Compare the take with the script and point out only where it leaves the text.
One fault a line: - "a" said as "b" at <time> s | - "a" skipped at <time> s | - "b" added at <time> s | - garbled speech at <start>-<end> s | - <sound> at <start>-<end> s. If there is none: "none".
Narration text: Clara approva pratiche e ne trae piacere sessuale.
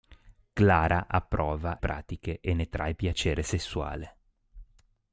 none